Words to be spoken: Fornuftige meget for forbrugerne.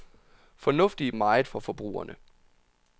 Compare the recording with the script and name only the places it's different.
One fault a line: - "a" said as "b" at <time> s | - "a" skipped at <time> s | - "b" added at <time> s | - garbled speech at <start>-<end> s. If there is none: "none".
none